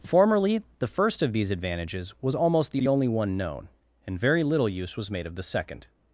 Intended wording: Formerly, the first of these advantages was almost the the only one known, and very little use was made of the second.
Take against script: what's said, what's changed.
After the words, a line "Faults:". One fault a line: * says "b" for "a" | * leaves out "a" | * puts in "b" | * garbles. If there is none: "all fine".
Formerly, the first of these advantages was almost the the only one known, and very little use was made of the second.
Faults:
all fine